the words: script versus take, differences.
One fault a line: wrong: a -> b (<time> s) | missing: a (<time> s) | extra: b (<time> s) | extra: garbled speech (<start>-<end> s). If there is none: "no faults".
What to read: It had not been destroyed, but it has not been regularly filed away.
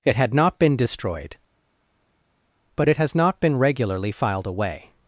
no faults